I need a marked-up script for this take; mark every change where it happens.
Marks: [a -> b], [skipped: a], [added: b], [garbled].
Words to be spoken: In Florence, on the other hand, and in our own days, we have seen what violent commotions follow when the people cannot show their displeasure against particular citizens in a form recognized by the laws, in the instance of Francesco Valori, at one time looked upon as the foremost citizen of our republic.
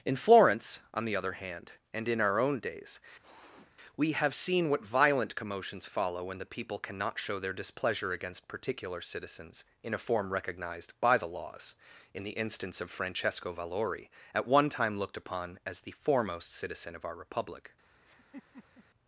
In Florence, on the other hand, and in our own days, we have seen what violent commotions follow when the people cannot show their displeasure against particular citizens in a form recognized by the laws, in the instance of Francesco Valori, at one time looked upon as the foremost citizen of our republic.